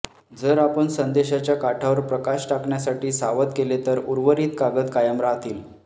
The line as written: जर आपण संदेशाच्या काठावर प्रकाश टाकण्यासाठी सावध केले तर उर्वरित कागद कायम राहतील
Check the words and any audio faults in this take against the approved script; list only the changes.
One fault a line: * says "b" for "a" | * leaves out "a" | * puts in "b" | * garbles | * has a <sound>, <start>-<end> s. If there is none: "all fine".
all fine